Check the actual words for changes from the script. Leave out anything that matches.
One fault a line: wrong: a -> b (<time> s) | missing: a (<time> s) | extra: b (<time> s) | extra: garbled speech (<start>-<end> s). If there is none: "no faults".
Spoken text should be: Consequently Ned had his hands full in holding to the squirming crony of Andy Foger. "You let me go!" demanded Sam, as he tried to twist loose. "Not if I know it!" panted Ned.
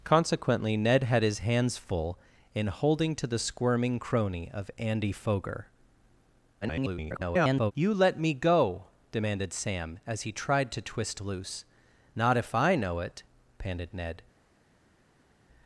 extra: garbled speech (6.6-7.7 s)